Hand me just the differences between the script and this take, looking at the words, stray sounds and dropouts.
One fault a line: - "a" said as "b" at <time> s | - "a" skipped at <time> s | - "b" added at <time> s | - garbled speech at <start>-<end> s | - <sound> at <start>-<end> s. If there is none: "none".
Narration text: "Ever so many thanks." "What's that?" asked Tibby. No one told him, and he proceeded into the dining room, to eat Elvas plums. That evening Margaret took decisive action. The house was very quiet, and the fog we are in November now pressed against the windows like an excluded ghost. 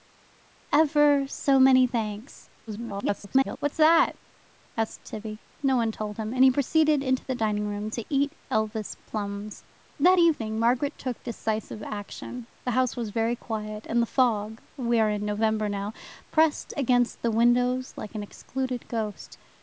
- garbled speech at 2.7-3.6 s